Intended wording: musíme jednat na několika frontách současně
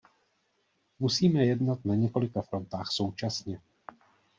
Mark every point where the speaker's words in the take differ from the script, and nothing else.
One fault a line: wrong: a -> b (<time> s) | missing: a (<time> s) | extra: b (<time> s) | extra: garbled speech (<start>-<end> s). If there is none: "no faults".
no faults